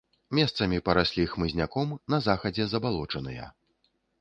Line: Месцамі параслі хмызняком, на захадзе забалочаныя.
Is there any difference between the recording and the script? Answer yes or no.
no